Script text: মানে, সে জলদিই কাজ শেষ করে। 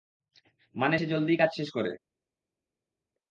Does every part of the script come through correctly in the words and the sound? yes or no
yes